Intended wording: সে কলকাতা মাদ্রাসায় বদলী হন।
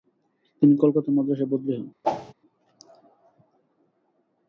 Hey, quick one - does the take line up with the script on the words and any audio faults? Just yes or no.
no